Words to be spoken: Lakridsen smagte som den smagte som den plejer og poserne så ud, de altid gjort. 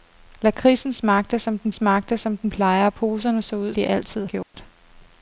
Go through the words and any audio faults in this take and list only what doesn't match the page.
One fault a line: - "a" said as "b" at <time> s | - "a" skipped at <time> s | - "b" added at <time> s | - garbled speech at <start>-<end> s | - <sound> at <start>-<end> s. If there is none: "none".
- dropout at 4.4-4.5 s